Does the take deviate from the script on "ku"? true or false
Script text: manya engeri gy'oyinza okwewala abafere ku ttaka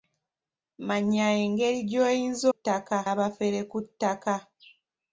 false